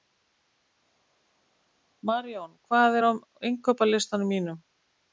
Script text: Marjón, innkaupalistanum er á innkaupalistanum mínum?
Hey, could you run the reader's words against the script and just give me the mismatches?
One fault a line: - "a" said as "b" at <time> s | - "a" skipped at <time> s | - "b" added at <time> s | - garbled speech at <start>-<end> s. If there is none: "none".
- "innkaupalistanum" said as "hvað" at 2.7 s